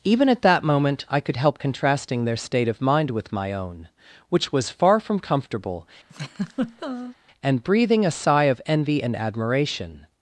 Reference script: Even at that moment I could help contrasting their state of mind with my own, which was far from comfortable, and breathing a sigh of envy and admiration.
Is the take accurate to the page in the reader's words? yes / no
yes